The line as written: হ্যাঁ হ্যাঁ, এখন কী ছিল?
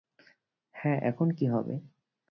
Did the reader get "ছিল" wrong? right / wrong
wrong